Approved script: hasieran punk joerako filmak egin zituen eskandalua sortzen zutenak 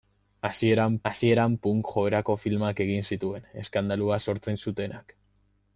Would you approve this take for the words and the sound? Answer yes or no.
no